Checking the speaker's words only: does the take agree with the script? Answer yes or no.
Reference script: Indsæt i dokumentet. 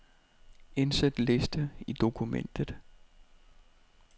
no